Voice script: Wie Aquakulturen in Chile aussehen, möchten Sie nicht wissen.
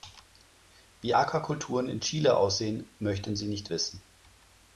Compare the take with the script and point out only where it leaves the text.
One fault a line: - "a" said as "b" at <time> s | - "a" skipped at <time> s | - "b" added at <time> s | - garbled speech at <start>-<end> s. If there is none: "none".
none